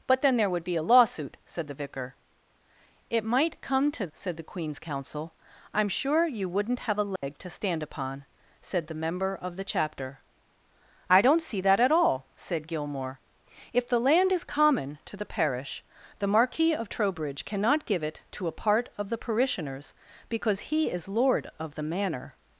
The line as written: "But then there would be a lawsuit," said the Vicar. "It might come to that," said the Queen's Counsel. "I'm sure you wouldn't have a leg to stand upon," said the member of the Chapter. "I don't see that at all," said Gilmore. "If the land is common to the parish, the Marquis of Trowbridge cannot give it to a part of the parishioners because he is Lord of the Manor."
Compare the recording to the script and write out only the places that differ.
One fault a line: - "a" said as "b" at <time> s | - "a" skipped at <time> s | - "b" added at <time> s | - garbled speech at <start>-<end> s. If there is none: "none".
- "that" skipped at 4.1 s